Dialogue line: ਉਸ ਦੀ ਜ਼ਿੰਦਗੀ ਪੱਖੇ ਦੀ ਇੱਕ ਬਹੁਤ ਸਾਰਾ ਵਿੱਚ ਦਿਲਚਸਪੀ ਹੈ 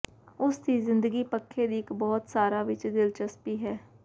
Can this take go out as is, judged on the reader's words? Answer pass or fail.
pass